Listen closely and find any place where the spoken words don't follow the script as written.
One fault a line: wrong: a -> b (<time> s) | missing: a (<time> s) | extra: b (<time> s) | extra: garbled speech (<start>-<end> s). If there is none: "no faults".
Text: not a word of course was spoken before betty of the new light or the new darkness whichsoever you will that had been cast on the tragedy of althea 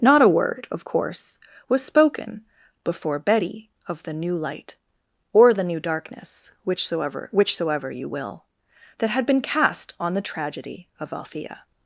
extra: whichsoever (7.3 s)